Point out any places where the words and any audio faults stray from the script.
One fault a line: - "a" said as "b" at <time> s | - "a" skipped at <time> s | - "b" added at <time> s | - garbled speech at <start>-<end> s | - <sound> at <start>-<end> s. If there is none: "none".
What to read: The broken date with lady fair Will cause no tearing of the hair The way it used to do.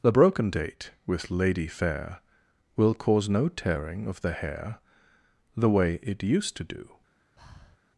- breath at 7.4-7.8 s